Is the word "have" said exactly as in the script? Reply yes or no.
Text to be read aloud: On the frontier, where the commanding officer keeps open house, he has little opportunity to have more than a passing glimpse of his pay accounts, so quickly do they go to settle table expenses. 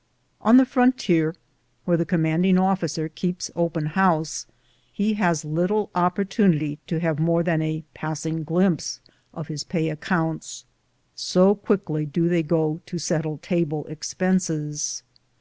yes